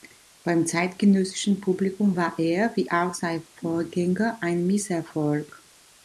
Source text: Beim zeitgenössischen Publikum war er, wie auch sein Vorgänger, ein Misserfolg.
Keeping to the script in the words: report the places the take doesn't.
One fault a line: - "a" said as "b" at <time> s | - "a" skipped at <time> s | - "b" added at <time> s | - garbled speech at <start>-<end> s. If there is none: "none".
none